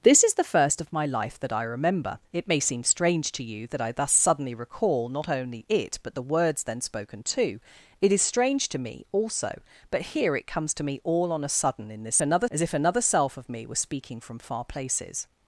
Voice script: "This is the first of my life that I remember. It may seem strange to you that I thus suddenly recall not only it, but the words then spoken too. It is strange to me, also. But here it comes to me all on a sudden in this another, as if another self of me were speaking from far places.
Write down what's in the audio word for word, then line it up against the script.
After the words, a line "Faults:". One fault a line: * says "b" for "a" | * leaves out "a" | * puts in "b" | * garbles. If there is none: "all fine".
"This is the first of my life that I remember. It may seem strange to you that I thus suddenly recall not only it, but the words then spoken too. It is strange to me, also. But here it comes to me all on a sudden in this another, as if another self of me were speaking from far places.
Faults:
all fine